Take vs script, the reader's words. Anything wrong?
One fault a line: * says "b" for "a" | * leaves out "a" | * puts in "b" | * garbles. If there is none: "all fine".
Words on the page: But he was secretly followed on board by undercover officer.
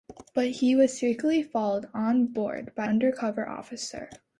all fine